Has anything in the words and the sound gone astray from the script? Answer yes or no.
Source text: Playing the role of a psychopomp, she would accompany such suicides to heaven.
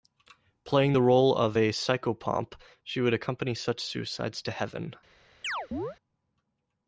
yes